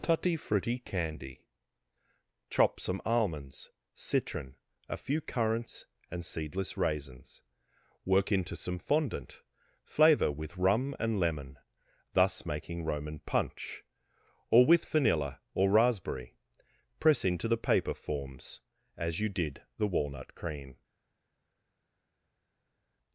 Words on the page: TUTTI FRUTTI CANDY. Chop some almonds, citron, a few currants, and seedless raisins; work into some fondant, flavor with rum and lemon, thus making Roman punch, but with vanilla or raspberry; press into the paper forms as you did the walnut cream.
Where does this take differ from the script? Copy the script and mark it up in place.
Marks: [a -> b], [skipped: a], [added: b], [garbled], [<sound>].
TUTTI FRUTTI CANDY. Chop some almonds, citron, a few currants, and seedless raisins; work into some fondant, flavor with rum and lemon, thus making Roman punch, [but -> or] with vanilla or raspberry; press into the paper forms as you did the walnut cream.